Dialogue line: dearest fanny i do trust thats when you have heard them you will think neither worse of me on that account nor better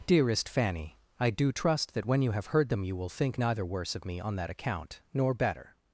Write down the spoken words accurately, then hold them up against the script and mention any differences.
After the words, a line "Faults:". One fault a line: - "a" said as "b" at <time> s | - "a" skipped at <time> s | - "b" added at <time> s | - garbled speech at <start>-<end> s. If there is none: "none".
dearest fanny i do trust that when you have heard them you will think neither worse of me on that account nor better
Faults:
- "thats" said as "that" at 1.9 s